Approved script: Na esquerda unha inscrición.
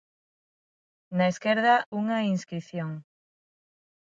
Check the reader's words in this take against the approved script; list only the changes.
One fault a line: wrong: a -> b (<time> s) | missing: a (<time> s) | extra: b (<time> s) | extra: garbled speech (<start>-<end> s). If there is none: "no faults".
no faults